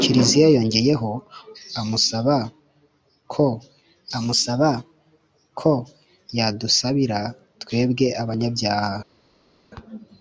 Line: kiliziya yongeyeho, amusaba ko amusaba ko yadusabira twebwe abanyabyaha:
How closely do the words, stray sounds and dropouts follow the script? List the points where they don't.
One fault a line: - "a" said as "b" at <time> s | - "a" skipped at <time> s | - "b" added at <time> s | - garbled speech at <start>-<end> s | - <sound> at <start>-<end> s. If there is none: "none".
none